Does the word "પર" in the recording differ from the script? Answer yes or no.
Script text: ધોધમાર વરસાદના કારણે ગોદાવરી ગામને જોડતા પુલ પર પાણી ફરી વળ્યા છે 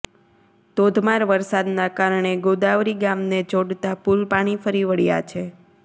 yes